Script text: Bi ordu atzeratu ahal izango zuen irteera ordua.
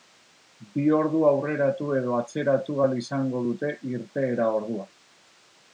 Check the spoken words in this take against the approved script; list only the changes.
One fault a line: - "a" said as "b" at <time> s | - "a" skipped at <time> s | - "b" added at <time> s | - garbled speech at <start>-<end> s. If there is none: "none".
- "aurreratu edo" added at 1.3 s
- "zuen" said as "dute" at 3.5 s